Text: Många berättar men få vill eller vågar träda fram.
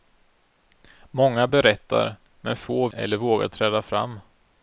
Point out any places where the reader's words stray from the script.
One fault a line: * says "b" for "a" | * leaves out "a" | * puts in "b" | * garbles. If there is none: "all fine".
* leaves out "vill"